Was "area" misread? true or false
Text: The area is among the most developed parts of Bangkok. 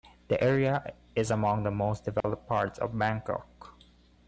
false